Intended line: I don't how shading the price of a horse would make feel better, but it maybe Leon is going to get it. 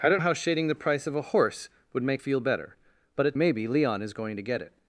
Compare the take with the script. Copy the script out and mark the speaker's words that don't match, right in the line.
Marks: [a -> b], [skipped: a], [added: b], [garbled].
I don't how shading the price of a horse would make feel better, but it maybe Leon is going to get it.